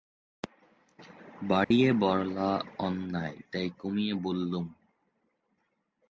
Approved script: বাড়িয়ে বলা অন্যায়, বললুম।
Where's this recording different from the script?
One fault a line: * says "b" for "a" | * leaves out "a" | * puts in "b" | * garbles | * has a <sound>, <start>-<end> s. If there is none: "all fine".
* has a dropout, 1.6-1.7 s
* puts in "তাই কমিয়ে"